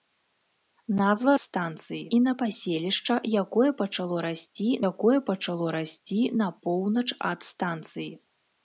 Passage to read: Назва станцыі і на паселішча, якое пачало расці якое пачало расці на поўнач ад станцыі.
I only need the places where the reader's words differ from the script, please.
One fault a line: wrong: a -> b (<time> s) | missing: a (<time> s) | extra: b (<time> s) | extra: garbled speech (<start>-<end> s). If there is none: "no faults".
no faults